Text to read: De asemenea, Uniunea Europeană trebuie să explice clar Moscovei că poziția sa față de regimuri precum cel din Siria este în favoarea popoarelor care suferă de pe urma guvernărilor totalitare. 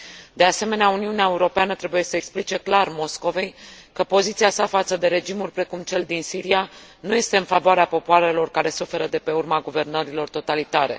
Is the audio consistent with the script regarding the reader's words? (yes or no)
no